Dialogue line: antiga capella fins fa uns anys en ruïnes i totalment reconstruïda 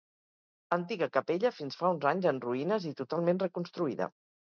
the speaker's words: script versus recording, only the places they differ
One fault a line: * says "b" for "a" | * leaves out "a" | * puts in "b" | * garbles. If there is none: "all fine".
all fine